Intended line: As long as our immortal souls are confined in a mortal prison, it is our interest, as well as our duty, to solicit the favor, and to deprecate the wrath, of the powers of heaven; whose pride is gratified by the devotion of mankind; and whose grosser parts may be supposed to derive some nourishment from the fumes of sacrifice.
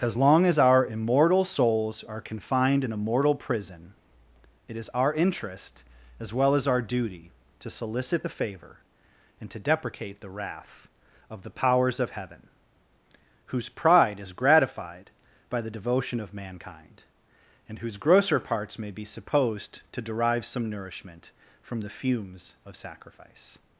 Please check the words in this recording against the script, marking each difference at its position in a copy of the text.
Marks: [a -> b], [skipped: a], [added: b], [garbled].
As long as our immortal souls are confined in a mortal prison, it is our interest, as well as our duty, to solicit the favor, and to deprecate the wrath, of the powers of heaven; whose pride is gratified by the devotion of mankind; and whose grosser parts may be supposed to derive some nourishment from the fumes of sacrifice.